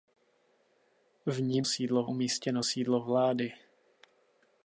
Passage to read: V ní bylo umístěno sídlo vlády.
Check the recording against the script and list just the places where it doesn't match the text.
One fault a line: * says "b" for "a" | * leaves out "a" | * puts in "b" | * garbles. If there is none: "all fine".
* says "sídlo" for "bylo"